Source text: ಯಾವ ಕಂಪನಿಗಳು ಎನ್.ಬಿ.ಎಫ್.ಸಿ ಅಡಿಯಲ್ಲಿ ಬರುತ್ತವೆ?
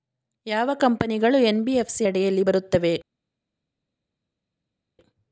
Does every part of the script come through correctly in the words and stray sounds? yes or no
yes